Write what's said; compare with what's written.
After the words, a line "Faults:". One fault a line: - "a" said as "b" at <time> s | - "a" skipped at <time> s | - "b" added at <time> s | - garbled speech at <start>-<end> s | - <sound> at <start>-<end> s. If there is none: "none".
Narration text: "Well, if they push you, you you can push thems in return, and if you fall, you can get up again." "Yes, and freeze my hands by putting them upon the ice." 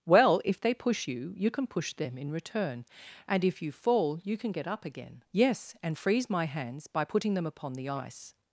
"Well, if they push you, you can push them in return, and if you fall, you can get up again." "Yes, and freeze my hands by putting them upon the ice."
Faults:
- "you" skipped at 1.5 s
- "thems" said as "them" at 1.9 s